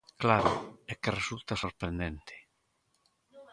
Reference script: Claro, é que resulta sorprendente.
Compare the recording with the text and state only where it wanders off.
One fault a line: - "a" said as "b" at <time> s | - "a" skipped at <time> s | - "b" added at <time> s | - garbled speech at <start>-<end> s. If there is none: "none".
none